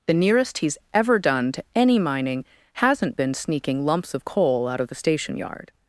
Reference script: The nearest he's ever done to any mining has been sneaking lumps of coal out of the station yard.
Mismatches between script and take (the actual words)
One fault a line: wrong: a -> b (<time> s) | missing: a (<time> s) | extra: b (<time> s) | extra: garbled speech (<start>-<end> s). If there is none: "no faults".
wrong: has -> hasn't (2.7 s)